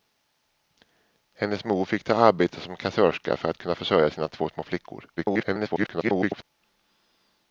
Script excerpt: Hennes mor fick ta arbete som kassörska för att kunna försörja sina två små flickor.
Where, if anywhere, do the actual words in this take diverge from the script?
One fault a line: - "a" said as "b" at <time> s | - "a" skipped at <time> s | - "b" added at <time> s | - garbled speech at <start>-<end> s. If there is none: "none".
- garbled speech at 5.2-6.4 s